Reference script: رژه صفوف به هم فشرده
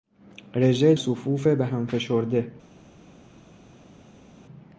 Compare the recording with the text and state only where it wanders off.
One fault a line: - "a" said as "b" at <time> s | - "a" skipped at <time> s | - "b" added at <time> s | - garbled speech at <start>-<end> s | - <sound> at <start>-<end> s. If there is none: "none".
none